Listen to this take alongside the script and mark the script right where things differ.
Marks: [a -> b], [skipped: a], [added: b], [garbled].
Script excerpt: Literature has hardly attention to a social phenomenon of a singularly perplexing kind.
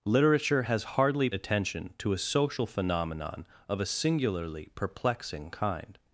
Literature has hardly attention to a social phenomenon of a singularly perplexing kind.